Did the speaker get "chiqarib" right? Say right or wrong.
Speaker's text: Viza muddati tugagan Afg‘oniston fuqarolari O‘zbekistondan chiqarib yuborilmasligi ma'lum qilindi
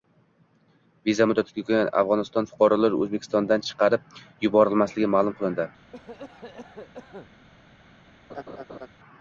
right